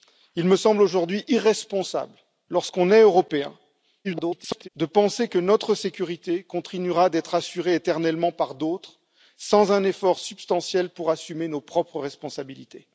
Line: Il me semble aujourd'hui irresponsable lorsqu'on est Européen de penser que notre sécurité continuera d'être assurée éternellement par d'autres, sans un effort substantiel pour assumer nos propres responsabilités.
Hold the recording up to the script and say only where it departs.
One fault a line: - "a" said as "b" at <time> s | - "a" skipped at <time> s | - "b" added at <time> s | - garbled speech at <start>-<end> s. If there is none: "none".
- garbled speech at 4.0-4.7 s